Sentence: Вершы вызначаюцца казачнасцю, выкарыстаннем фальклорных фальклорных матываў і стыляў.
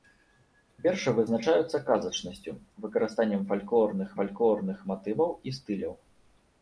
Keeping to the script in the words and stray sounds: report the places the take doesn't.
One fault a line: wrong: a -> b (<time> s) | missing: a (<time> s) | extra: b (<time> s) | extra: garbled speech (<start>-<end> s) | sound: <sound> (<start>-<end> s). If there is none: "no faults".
no faults